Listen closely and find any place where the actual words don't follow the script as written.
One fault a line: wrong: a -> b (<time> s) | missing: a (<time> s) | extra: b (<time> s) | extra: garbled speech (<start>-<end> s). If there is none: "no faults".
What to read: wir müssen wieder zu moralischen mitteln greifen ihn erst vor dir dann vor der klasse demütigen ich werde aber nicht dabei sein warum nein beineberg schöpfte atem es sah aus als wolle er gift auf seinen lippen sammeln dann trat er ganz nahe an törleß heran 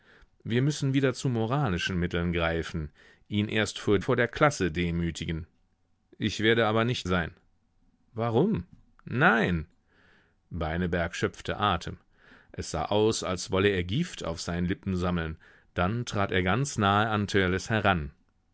missing: dir dann (4.0 s)
missing: dabei (7.1 s)